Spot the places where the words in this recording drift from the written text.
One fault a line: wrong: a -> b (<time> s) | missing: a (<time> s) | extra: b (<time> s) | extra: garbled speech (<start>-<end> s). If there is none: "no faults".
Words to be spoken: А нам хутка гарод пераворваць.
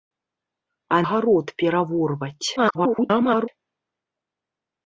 missing: нам хутка (1.0 s)
extra: garbled speech (2.6-3.5 s)